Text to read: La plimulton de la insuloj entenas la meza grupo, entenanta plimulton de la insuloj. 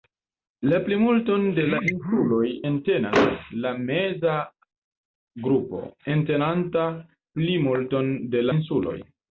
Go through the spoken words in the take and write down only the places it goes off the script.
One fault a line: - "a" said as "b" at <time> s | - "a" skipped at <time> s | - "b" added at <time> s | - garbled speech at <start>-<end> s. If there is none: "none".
- "la" skipped at 8.5 s